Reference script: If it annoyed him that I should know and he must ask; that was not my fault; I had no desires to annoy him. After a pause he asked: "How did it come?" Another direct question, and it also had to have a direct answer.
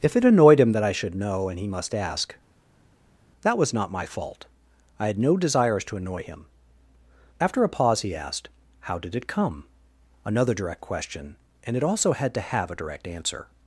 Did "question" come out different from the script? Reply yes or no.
no